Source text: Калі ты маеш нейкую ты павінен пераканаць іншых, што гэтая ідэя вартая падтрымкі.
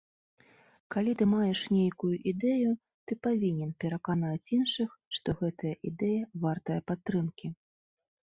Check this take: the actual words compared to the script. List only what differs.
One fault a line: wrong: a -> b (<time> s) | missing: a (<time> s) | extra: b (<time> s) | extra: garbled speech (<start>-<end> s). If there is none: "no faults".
extra: ідэю (2.3 s)